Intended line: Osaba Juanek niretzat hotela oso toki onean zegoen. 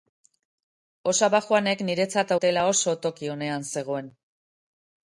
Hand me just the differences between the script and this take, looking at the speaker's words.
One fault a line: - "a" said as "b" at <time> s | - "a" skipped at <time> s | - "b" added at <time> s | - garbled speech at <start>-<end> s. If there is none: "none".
none